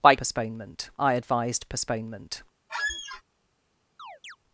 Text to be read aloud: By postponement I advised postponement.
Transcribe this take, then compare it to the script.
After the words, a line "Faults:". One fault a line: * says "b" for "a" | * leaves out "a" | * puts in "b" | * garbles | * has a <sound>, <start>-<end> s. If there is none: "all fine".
By postponement I advised postponement.
Faults:
* has a squeak, 2.7-3.2 s
* has a chirp, 4.0-4.4 s